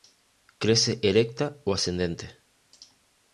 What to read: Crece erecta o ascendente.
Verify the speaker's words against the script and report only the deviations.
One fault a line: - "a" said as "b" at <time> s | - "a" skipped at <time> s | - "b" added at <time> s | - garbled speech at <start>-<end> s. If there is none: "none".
none